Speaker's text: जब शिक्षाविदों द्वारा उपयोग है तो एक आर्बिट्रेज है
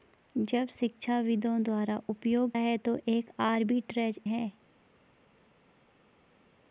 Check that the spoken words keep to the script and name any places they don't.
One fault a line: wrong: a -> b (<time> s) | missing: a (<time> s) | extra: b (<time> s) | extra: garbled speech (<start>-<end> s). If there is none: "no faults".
no faults